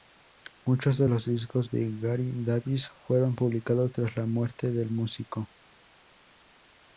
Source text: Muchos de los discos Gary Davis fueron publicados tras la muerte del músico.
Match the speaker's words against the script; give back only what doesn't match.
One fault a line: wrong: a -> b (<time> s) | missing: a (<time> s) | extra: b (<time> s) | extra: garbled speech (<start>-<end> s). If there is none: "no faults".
extra: de (1.7 s)